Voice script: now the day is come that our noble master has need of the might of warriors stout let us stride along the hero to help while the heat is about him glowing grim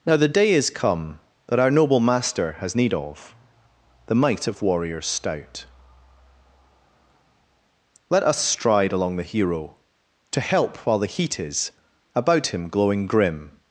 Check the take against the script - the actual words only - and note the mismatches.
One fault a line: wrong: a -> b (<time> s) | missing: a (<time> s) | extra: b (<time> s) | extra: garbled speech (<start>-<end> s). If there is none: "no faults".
no faults